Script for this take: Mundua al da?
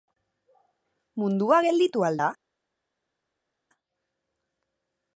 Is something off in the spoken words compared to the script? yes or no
yes